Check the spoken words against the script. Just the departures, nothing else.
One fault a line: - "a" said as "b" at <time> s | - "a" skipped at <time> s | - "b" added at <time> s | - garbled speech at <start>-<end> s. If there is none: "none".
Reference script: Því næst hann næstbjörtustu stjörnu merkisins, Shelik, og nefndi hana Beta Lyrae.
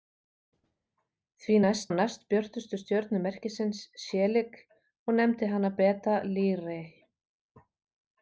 none